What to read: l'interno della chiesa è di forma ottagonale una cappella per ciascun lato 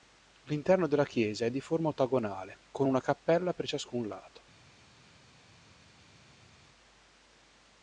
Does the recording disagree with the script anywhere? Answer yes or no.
yes